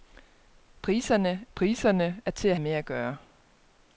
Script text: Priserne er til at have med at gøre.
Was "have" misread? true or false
true